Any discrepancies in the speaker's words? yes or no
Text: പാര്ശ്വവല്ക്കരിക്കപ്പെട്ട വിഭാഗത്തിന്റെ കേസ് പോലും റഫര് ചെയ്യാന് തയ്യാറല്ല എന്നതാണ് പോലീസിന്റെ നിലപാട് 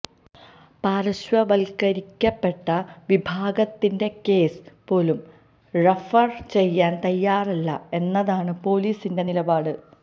no